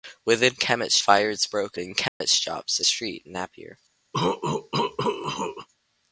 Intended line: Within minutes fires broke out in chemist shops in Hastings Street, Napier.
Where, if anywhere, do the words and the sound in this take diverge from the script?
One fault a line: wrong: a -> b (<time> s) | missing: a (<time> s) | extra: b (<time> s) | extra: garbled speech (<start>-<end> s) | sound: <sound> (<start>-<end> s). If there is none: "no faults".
wrong: minutes -> chemist (0.6 s)
missing: out (1.8 s)
sound: dropout (2.1-2.2 s)
missing: in Hastings (2.8 s)
sound: cough (4.1-5.7 s)